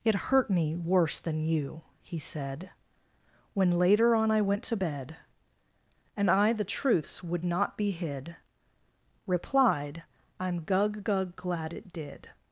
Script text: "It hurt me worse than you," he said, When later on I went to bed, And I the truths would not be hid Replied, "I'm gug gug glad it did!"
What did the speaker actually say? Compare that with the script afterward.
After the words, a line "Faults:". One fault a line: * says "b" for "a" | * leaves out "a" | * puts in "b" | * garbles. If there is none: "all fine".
"It hurt me worse than you," he said, When later on I went to bed, And I the truths would not be hid Replied, "I'm gug gug glad it did!"
Faults:
all fine